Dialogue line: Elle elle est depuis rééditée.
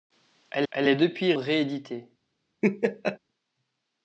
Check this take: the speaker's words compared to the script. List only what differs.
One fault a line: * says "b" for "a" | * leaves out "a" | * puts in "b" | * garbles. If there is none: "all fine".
all fine